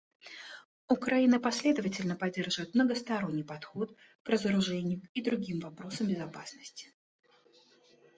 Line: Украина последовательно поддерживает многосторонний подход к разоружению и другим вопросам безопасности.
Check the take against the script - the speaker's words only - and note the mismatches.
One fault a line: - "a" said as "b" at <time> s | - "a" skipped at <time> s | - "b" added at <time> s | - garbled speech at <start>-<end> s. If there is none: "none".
none